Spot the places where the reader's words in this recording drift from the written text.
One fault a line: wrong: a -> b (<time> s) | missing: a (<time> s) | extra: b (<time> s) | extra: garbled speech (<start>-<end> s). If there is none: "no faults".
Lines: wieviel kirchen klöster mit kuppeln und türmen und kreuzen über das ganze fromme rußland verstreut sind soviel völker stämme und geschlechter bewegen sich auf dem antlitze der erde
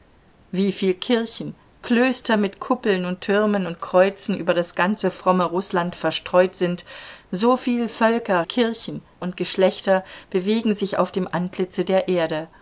wrong: stämme -> kirchen (8.4 s)